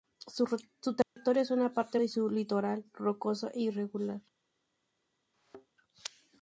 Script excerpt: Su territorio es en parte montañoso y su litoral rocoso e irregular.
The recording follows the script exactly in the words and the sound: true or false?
false